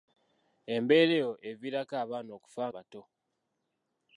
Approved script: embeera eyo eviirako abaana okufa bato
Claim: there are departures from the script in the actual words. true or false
false